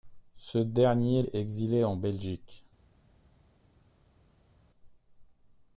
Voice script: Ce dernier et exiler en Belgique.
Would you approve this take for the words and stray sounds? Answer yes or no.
yes